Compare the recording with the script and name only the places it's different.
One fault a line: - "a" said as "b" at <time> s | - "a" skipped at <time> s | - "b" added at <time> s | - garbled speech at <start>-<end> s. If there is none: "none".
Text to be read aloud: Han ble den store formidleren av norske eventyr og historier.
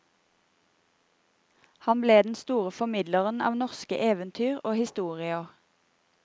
none